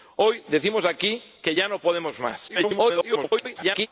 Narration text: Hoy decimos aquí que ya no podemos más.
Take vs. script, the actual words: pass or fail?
fail